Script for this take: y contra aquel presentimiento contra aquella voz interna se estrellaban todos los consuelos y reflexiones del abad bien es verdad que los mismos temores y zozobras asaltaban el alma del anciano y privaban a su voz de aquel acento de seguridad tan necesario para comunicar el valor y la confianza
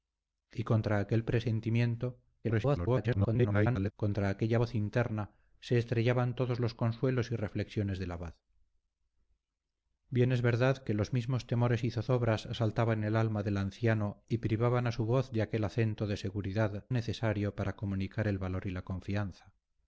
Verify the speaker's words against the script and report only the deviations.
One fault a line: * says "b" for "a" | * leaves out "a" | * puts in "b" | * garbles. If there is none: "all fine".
* garbles
* leaves out "tan"